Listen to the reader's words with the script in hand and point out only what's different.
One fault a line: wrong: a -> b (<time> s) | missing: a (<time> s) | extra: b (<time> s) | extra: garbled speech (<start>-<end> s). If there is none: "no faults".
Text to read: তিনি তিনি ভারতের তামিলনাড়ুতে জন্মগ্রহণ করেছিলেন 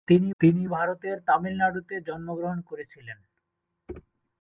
no faults